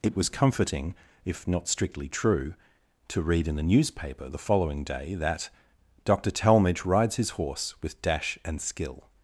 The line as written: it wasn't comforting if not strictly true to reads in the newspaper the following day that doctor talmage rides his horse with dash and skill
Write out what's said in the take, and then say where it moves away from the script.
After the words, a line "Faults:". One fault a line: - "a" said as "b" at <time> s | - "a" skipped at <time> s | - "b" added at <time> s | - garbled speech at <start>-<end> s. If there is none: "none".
it was comforting if not strictly true to read in the newspaper the following day that doctor talmage rides his horse with dash and skill
Faults:
- "wasn't" said as "was" at 0.1 s
- "reads" said as "read" at 3.2 s